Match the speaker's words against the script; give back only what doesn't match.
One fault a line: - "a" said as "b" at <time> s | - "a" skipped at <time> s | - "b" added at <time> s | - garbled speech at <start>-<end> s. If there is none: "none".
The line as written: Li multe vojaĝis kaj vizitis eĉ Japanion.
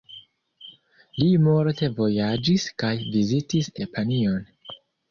- "eĉ" skipped at 3.7 s